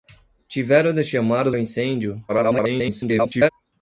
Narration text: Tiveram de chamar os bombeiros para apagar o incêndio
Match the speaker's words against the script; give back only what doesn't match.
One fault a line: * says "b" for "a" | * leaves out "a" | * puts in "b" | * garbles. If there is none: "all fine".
* leaves out "bombeiros para apagar"
* garbles